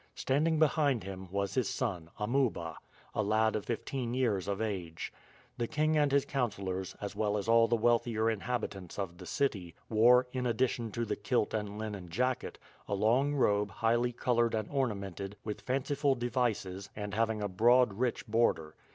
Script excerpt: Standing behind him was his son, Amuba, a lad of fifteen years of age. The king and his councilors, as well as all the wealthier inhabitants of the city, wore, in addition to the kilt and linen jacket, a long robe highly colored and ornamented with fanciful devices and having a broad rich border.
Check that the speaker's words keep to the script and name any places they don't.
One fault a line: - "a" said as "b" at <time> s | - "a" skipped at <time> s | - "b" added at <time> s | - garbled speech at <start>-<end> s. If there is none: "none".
none